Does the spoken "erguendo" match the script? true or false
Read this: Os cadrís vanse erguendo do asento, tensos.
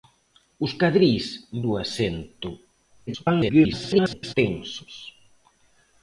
false